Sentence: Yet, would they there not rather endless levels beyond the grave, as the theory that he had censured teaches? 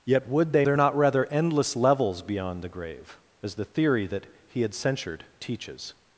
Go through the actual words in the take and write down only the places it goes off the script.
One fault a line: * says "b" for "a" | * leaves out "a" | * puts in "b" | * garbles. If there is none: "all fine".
all fine